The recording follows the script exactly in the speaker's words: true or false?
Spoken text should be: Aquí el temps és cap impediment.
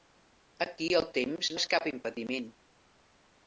true